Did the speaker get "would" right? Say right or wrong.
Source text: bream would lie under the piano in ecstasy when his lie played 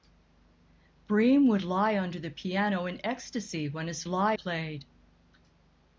right